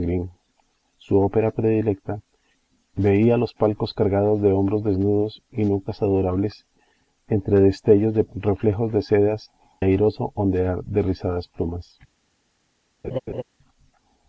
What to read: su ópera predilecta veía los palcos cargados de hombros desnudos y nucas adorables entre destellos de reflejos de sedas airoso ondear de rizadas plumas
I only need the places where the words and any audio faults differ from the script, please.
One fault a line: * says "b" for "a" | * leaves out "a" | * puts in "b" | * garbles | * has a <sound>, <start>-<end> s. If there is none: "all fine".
* has a laugh, 13.0-13.4 s